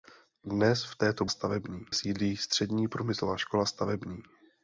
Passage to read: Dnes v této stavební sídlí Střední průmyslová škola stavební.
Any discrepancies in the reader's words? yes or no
no